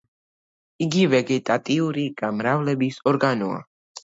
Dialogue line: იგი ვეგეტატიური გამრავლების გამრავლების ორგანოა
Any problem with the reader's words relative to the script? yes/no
yes